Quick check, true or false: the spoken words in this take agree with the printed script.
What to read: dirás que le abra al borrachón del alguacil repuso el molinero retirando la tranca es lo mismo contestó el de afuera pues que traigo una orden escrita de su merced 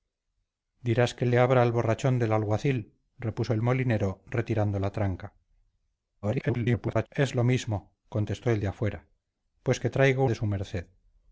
false